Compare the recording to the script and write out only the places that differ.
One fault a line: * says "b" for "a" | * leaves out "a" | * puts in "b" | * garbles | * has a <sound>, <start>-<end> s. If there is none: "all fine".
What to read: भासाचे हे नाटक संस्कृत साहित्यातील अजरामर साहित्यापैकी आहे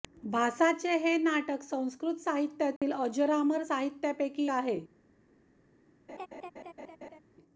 * has a dropout, 2.8-2.8 s
* has a laugh, 6.1-7.2 s